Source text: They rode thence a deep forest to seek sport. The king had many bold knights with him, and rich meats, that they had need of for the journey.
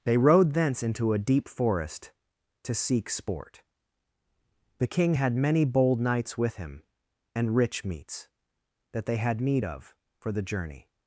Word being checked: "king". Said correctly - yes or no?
yes